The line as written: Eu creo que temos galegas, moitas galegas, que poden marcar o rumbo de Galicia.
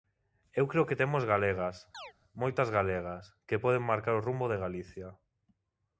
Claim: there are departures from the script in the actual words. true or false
false